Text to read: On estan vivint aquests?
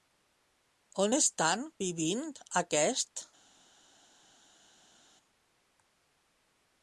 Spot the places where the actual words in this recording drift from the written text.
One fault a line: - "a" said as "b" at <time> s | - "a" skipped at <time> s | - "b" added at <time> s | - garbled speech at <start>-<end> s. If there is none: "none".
none